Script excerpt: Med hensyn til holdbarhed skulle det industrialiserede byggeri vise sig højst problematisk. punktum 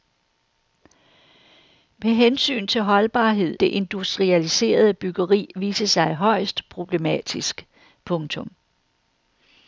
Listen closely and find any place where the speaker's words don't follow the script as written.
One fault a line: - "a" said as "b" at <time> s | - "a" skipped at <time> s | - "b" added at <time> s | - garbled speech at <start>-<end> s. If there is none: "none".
- "skulle" skipped at 3.6 s